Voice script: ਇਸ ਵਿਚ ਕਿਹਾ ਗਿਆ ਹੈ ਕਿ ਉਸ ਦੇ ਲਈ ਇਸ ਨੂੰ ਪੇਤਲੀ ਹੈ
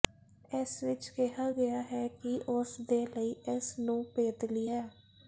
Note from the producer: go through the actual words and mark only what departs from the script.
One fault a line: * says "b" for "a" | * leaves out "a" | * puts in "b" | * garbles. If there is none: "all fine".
all fine